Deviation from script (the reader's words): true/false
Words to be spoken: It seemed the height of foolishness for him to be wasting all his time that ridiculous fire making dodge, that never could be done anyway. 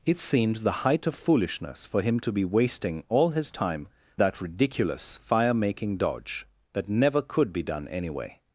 false